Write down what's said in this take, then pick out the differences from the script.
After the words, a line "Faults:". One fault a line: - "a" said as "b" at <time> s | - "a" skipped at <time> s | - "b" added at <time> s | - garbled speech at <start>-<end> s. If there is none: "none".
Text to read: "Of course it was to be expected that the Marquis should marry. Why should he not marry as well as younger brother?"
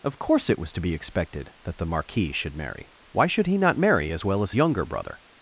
"Of course it was to be expected that the Marquis should marry. Why should he not marry as well as younger brother?"
Faults:
none